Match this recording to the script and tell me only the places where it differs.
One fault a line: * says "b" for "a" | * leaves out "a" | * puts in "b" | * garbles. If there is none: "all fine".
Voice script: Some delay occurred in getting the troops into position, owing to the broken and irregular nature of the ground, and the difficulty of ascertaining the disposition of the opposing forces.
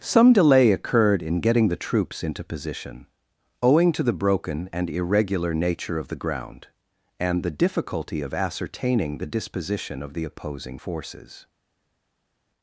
all fine